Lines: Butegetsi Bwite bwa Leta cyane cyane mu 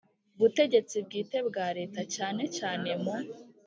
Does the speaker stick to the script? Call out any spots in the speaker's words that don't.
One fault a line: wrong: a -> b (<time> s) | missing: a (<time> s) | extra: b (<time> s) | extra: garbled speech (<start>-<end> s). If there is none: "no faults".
no faults